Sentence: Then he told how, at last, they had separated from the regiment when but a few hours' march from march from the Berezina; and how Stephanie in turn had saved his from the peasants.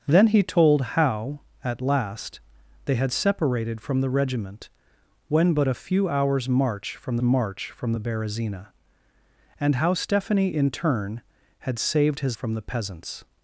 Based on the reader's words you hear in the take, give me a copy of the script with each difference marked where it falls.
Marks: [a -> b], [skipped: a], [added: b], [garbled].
Then he told how, at last, they had separated from the regiment when but a few hours' march from march from the Berezina; and how Stephanie in turn had saved his from the peasants.